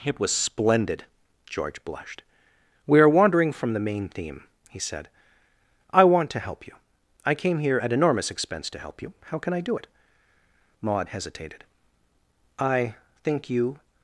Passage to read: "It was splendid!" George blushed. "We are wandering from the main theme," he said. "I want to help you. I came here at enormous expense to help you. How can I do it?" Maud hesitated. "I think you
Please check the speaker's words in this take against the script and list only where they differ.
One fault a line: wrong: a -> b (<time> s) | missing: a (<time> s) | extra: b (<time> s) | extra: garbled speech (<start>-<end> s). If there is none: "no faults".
no faults